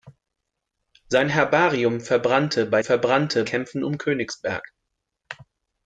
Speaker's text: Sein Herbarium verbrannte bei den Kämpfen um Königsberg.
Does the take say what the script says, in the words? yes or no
no